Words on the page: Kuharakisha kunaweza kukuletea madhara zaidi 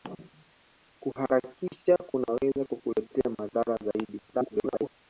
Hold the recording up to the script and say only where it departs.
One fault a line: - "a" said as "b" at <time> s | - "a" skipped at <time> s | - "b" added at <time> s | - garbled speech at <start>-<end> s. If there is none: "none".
- garbled speech at 4.3-4.9 s